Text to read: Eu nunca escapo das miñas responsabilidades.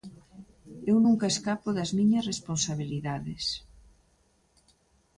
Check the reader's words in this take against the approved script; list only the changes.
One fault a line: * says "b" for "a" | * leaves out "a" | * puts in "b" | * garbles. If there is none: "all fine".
all fine